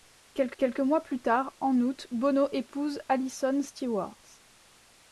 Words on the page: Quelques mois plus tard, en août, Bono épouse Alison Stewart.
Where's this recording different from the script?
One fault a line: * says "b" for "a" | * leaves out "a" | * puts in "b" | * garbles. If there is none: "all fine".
* puts in "quelques"